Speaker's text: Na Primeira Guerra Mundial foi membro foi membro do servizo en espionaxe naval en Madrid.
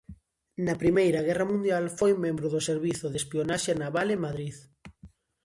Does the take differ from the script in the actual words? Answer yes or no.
yes